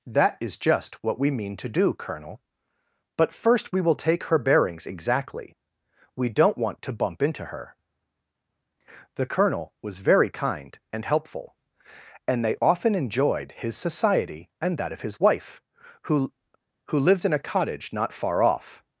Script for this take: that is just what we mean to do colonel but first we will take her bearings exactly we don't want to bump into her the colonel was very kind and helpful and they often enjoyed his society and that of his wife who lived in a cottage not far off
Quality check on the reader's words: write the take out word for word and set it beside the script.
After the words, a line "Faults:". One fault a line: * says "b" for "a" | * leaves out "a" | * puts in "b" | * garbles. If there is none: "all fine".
that is just what we mean to do colonel but first we will take her bearings exactly we don't want to bump into her the colonel was very kind and helpful and they often enjoyed his society and that of his wife who who lived in a cottage not far off
Faults:
* puts in "who"